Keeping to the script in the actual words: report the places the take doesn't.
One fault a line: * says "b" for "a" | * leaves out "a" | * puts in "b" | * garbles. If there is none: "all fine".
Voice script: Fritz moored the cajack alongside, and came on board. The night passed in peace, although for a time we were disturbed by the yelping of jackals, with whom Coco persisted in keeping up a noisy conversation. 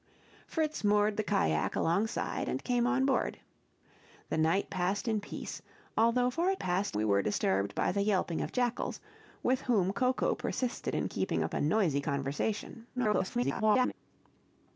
* says "passed" for "time"
* garbles